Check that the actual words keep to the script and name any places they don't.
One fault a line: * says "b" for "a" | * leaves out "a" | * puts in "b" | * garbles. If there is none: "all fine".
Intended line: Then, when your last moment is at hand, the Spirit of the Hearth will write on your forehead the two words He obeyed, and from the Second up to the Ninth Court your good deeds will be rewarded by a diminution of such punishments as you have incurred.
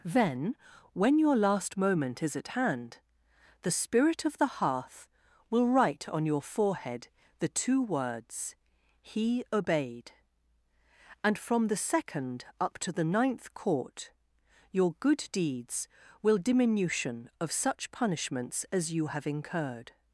* leaves out "be rewarded by a"